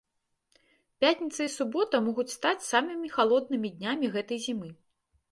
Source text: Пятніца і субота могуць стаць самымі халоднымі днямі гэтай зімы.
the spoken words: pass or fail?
pass